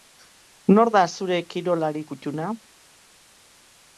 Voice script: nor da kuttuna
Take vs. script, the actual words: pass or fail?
fail